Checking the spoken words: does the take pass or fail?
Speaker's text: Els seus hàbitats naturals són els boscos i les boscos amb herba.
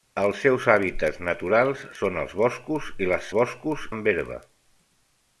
pass